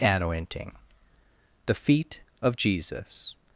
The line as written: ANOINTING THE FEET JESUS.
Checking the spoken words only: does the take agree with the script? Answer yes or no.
no